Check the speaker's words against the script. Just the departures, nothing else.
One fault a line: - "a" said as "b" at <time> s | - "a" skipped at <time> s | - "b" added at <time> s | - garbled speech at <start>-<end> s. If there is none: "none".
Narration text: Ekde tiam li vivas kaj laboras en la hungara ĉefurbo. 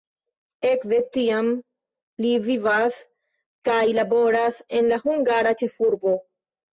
none